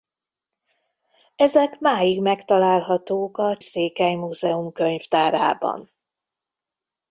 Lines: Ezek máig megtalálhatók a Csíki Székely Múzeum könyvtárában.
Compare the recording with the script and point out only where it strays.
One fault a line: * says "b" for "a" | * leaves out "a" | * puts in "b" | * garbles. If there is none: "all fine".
* leaves out "Csíki"